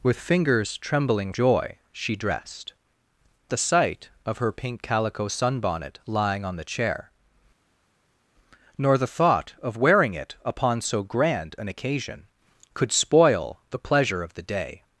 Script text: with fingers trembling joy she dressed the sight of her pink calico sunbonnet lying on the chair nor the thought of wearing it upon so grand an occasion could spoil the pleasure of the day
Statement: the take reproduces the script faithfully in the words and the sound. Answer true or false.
true